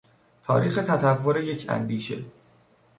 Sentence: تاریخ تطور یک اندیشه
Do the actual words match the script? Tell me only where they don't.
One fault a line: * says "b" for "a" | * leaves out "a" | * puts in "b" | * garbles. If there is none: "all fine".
all fine